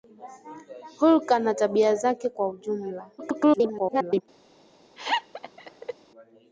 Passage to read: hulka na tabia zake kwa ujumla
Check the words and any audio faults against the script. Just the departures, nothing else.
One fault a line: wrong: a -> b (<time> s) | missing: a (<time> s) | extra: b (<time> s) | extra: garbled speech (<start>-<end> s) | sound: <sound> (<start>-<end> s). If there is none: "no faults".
extra: garbled speech (3.2-4.2 s)
sound: laugh (5.0-5.9 s)